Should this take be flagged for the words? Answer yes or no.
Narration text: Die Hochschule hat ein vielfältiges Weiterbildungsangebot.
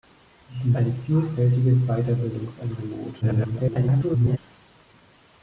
yes